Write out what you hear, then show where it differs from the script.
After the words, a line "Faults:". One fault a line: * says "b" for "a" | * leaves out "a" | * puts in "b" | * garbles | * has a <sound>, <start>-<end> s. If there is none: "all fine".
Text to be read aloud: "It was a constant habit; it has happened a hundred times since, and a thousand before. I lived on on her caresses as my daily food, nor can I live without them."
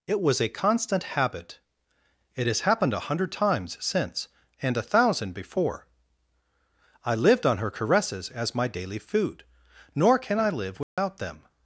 "It was a constant habit; it has happened a hundred times since, and a thousand before. I lived on her caresses as my daily food, nor can I live without them."
Faults:
* leaves out "on"
* has a dropout, 10.8-11.0 s